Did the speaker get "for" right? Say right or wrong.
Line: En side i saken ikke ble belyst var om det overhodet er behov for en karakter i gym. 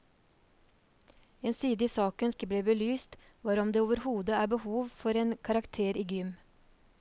right